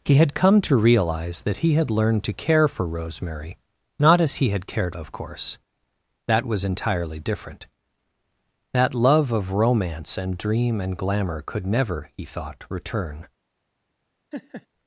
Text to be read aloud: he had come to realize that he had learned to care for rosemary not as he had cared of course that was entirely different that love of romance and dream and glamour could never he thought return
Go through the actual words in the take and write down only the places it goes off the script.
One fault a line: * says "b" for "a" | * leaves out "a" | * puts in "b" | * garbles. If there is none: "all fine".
all fine